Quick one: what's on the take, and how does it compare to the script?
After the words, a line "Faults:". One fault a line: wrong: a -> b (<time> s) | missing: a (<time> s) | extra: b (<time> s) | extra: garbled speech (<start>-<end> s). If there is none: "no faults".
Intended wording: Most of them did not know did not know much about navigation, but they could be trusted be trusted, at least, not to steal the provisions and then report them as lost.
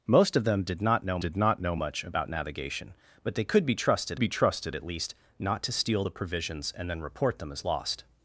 Most of them did not know did not know much about navigation, but they could be trusted be trusted, at least, not to steal the provisions and then report them as lost.
Faults:
no faults